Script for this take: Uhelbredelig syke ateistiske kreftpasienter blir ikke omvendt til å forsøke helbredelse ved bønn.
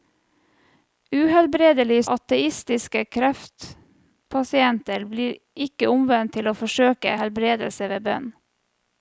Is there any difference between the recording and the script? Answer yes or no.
yes